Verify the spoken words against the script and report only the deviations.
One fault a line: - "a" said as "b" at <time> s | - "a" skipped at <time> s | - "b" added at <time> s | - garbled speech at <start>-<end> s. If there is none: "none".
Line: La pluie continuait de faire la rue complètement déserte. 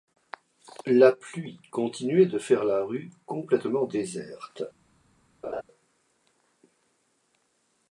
none